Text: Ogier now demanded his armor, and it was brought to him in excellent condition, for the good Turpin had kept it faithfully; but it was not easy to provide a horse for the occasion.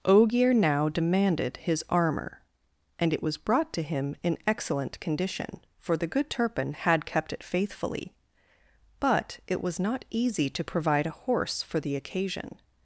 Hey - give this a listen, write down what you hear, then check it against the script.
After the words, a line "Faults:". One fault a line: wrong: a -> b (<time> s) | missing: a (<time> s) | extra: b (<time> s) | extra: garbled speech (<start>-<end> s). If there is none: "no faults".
Ogier now demanded his armor, and it was brought to him in excellent condition, for the good Turpin had kept it faithfully; but it was not easy to provide a horse for the occasion.
Faults:
no faults